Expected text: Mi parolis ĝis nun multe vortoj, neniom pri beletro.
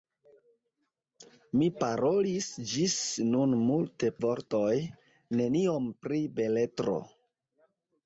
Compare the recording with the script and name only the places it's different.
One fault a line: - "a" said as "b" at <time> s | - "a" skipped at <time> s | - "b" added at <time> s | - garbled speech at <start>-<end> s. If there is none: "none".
none